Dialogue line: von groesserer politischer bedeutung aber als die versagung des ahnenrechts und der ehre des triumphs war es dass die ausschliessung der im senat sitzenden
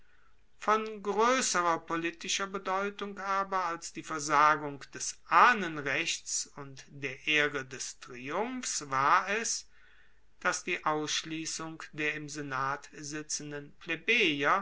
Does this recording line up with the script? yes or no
yes